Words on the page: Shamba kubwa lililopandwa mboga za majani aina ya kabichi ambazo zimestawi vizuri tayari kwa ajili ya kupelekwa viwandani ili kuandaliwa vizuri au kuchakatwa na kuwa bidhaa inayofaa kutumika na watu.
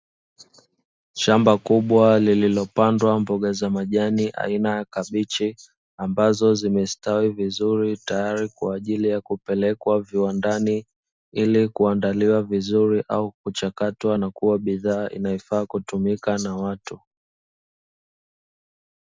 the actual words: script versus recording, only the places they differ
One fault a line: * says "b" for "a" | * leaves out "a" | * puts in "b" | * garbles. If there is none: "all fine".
all fine